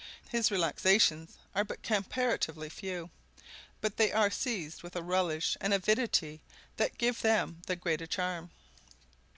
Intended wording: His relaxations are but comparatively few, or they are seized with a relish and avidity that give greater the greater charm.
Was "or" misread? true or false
true